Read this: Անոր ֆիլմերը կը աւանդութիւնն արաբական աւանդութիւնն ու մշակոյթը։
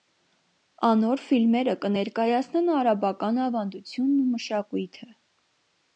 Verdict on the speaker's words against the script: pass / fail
fail